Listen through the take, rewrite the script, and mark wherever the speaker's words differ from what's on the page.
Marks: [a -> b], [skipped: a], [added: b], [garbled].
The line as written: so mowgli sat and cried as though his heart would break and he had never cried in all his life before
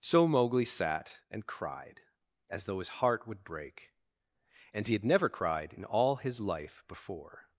so mowgli sat and cried as though his heart would break and he had never cried in all his life before